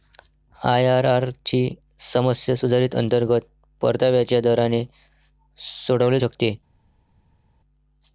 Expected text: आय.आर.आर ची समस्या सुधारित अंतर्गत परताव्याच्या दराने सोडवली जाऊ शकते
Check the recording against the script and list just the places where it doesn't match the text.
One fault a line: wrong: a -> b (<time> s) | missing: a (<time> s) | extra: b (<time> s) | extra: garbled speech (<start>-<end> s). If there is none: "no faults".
missing: जाऊ (6.2 s)